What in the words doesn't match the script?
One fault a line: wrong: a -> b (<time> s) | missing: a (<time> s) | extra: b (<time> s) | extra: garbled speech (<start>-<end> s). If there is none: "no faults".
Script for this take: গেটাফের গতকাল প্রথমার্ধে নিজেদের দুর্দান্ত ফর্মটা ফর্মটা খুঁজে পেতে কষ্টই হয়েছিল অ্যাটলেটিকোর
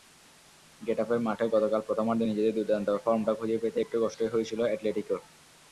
extra: মাঠে (1.2 s)
missing: ফর্মটা (3.3 s)
extra: একটু (3.8 s)